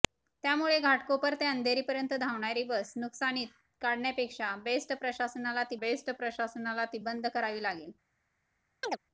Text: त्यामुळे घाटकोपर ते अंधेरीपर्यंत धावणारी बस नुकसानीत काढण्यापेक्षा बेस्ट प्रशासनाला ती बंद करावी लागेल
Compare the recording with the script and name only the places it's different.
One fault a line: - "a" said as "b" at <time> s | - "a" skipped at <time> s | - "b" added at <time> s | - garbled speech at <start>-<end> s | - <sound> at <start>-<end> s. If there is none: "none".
- "बेस्ट प्रशासनाला ती" added at 5.8 s
- chirp at 8.8-9.0 s